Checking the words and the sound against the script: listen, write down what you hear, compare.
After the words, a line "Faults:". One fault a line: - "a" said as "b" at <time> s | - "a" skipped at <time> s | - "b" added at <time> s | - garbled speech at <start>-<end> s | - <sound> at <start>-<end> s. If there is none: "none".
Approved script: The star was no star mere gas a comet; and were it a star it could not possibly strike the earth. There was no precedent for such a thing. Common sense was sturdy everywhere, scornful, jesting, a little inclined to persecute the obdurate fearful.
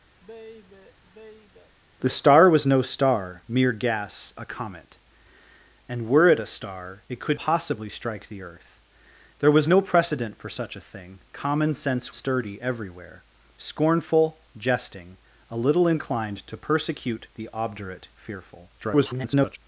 The star was no star mere gas a comet; and were it a star it could possibly strike the earth. There was no precedent for such a thing. Common sense sturdy everywhere, scornful, jesting, a little inclined to persecute the obdurate fearful. [garbled]
Faults:
- sigh at 0.2-1.8 s
- "not" skipped at 7.4 s
- "was" skipped at 12.1 s
- garbled speech at 18.8-19.6 s